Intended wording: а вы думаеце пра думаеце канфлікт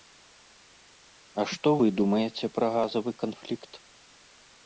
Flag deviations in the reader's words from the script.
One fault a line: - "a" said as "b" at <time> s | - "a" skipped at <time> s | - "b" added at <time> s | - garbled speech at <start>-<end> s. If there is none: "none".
- "што" added at 1.5 s
- "думаеце" said as "газавы" at 2.8 s